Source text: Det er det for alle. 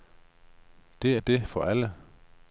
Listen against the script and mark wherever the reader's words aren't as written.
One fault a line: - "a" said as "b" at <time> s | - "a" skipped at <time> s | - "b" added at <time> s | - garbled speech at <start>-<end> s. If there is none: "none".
none